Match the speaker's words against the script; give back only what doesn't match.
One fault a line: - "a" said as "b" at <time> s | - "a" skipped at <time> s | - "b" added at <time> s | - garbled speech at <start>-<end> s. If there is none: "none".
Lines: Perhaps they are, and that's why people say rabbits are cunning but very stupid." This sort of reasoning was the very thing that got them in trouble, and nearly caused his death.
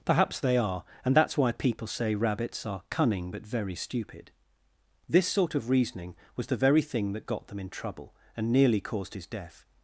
none